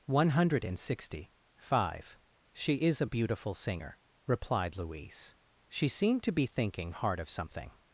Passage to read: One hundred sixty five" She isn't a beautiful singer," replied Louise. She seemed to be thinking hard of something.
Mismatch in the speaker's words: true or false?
true